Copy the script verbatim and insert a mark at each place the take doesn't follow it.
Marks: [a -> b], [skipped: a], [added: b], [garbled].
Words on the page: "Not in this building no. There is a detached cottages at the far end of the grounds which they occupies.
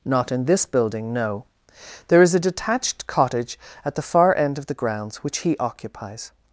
"Not in this building no. There is a detached [cottages -> cottage] at the far end of the grounds which [they -> he] occupies.